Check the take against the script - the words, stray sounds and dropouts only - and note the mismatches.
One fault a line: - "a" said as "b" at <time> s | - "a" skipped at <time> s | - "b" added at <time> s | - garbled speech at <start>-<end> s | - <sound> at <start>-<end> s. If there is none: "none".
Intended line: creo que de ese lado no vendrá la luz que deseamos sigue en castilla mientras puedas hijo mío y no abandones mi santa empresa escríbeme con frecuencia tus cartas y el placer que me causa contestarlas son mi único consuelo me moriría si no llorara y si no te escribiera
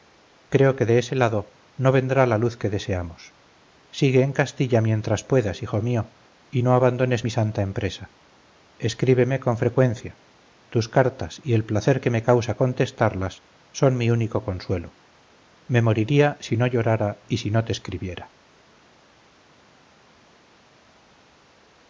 none